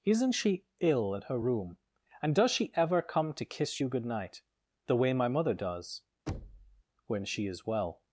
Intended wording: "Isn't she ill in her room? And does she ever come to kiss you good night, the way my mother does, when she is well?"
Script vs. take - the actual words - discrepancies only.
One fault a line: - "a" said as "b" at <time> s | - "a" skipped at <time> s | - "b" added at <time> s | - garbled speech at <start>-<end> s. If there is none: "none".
- "in" said as "at" at 1.1 s